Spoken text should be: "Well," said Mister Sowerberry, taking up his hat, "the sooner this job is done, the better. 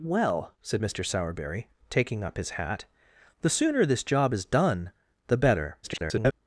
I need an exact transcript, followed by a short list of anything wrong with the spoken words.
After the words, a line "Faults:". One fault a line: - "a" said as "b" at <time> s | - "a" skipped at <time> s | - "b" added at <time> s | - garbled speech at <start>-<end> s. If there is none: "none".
"Well," said Mister Sowerberry, taking up his hat, "the sooner this job is done, the better. [garbled]
Faults:
- garbled speech at 5.8-6.3 s